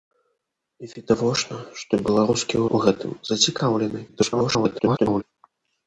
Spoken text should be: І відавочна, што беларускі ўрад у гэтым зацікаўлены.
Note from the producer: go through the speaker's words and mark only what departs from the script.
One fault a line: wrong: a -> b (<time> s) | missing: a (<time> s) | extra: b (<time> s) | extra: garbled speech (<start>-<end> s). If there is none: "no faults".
missing: ўрад (2.6 s)
extra: garbled speech (4.1-5.2 s)